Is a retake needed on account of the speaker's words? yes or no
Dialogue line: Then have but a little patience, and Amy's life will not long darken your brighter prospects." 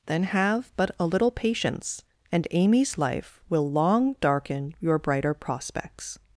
yes